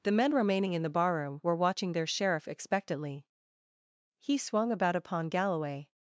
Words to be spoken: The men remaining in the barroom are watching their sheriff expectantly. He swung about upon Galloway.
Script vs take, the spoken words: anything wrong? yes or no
yes